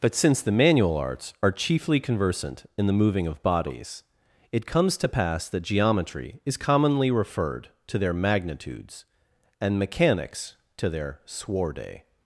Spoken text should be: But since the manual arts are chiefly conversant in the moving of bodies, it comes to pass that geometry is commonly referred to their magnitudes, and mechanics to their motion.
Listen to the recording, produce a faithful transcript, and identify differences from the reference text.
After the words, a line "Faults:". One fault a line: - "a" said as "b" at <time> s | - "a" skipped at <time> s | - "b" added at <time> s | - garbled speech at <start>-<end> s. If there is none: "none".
But since the manual arts are chiefly conversant in the moving of bodies, it comes to pass that geometry is commonly referred to their magnitudes, and mechanics to their sworde.
Faults:
- "motion" said as "sworde" at 11.3 s